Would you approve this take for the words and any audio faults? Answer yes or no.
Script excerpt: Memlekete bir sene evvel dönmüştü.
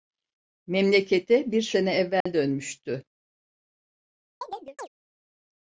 no